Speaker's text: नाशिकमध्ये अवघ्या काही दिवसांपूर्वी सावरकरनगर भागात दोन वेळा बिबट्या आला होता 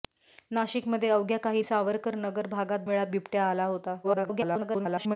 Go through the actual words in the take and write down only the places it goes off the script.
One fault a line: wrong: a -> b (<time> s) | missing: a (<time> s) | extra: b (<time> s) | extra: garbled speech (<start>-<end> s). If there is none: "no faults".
missing: दिवसांपूर्वी (1.6 s)
missing: दोन (2.8 s)
extra: garbled speech (4.0-5.2 s)